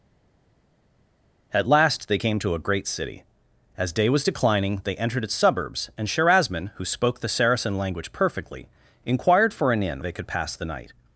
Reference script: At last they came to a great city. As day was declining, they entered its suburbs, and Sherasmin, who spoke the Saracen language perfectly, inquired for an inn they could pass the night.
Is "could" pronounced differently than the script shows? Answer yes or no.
no